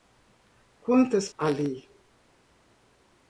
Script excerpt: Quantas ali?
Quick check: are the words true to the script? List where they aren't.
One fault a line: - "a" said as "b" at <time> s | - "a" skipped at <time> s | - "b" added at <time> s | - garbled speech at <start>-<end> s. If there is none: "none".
none